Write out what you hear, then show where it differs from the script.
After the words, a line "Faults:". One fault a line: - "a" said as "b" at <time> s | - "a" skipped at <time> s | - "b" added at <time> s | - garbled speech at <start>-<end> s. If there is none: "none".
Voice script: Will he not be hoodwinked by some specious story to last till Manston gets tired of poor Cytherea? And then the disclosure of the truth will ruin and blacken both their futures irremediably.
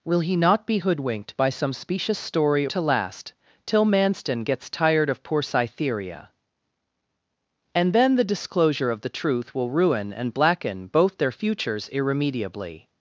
Will he not be hoodwinked by some specious story to last till Manston gets tired of poor Cytherea? And then the disclosure of the truth will ruin and blacken both their futures irremediably.
Faults:
none